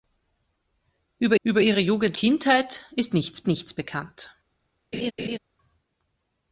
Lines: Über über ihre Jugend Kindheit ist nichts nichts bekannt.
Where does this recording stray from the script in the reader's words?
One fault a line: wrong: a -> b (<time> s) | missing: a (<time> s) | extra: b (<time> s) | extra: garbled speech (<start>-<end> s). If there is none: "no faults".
no faults